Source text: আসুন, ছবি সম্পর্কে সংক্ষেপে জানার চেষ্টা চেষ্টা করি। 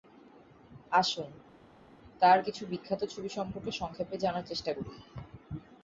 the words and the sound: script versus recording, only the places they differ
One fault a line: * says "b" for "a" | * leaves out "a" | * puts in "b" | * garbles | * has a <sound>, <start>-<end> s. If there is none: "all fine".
* puts in "তাঁর কিছু বিখ্যাত"
* leaves out "চেষ্টা"